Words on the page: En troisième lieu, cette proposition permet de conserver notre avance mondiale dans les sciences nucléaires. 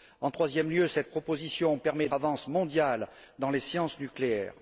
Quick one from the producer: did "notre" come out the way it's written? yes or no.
no